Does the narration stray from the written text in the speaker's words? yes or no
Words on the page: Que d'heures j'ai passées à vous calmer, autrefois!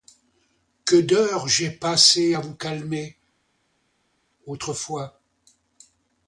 no